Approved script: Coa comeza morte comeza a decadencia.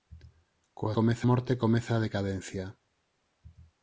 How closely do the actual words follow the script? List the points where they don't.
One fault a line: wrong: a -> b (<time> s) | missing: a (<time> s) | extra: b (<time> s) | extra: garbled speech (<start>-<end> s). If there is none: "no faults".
no faults